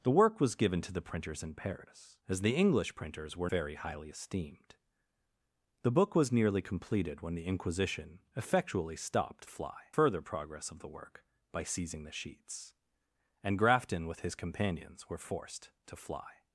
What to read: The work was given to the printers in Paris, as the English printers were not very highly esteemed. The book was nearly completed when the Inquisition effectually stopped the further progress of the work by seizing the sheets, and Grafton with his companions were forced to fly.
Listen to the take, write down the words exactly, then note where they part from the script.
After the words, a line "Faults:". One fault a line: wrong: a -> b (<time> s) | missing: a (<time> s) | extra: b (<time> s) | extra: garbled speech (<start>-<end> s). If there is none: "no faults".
The work was given to the printers in Paris, as the English printers were very highly esteemed. The book was nearly completed when the Inquisition effectually stopped fly further progress of the work by seizing the sheets, and Grafton with his companions were forced to fly.
Faults:
missing: not (3.5 s)
wrong: the -> fly (9.5 s)